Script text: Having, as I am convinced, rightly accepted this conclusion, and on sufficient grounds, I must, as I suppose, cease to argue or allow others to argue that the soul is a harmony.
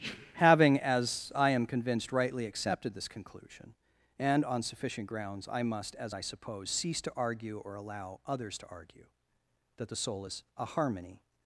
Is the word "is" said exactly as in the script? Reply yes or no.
yes